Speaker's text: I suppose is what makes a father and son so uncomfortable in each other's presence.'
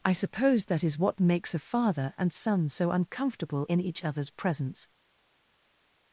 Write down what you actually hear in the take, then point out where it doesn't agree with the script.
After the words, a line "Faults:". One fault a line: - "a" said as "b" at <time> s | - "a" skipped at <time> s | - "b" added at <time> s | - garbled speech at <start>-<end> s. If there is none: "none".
I suppose that is what makes a father and son so uncomfortable in each other's presence.'
Faults:
- "that" added at 0.7 s